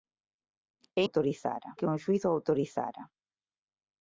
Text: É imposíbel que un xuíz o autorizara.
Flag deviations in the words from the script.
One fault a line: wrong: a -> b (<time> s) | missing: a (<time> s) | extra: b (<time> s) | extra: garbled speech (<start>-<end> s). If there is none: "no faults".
wrong: imposíbel -> autorizara (1.0 s)